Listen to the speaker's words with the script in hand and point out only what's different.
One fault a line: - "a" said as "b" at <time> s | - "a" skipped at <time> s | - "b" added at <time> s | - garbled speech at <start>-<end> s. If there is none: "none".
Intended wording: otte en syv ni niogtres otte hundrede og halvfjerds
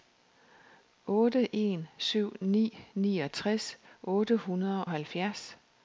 - "og" skipped at 4.9 s